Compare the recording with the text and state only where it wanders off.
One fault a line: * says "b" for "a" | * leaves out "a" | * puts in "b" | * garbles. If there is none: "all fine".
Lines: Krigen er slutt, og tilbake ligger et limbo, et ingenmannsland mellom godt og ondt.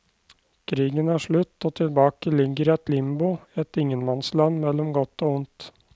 all fine